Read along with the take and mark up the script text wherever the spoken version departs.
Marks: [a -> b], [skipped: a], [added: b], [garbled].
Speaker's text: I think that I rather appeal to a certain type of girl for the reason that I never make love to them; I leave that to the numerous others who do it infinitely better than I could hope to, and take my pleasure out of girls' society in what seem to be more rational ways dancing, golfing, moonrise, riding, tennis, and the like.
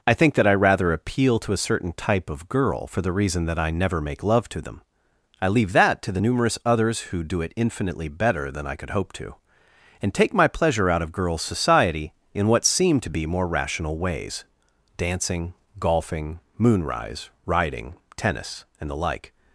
I think that I rather appeal to a certain type of girl for the reason that I never make love to them; I leave that to the numerous others who do it infinitely better than I could hope to, and take my pleasure out of girls' society in what seem to be more rational ways dancing, golfing, moonrise, riding, tennis, and the like.